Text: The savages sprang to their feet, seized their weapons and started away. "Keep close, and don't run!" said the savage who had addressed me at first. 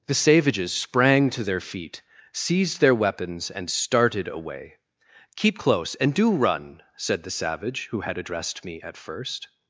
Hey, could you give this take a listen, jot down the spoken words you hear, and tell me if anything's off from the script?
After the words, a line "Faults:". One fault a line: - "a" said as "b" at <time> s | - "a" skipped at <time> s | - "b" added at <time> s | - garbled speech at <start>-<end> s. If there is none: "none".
The savages sprang to their feet, seized their weapons and started away. "Keep close, and do run!" said the savage who had addressed me at first.
Faults:
- "don't" said as "do" at 6.1 s